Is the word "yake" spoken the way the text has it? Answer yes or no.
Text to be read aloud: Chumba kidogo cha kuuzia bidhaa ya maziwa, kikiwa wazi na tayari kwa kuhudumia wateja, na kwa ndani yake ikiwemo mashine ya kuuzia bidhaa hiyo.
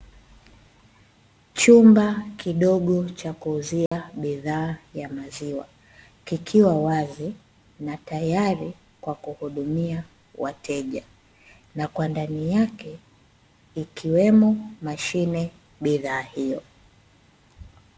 yes